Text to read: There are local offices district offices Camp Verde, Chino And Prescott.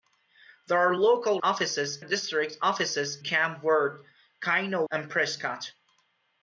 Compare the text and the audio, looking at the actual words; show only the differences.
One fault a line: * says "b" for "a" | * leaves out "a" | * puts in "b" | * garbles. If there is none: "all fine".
all fine